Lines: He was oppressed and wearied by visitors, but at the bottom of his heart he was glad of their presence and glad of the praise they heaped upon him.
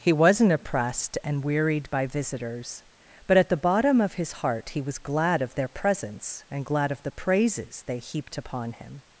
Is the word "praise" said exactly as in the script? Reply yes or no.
no